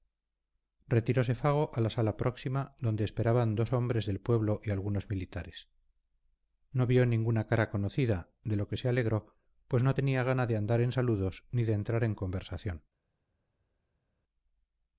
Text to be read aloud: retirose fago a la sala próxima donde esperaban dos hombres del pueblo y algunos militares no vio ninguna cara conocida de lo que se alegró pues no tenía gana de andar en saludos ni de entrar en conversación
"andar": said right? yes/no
yes